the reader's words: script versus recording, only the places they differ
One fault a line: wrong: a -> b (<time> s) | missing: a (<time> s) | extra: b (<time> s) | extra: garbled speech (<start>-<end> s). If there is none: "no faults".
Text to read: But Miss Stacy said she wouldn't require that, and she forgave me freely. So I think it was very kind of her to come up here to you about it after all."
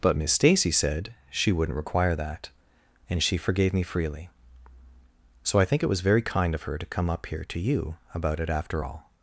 no faults